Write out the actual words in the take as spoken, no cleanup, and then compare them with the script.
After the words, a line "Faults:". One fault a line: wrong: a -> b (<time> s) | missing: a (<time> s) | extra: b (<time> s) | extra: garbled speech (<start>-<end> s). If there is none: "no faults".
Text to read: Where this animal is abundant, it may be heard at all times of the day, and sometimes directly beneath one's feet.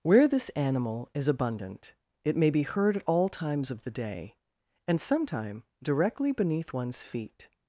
Where this animal is abundant, it may be heard at all times of the day, and sometime directly beneath one's feet.
Faults:
wrong: sometimes -> sometime (5.0 s)